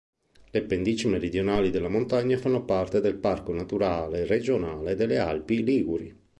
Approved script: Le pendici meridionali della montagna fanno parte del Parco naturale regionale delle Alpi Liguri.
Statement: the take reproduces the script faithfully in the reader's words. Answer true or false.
true